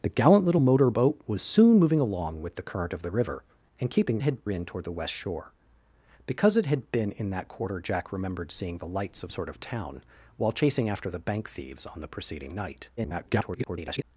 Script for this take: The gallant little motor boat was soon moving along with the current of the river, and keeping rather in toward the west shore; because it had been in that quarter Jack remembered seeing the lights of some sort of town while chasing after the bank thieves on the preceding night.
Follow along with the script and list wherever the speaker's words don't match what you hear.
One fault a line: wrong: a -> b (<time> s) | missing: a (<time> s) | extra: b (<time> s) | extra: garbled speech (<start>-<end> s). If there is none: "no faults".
wrong: rather -> had (4.2 s)
missing: some (9.3 s)
extra: garbled speech (13.0-14.0 s)